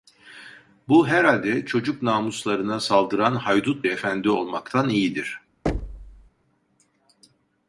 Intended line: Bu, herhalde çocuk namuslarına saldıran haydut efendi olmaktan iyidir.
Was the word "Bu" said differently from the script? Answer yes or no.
no